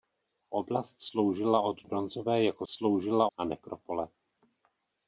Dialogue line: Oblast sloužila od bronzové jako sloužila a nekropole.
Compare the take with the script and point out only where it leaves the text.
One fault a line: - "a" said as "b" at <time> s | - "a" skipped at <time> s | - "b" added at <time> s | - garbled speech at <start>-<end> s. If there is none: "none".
none